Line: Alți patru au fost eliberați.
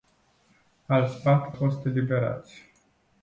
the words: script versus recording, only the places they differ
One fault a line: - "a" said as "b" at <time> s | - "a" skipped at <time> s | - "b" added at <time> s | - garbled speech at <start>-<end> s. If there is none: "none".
- "au" skipped at 1.6 s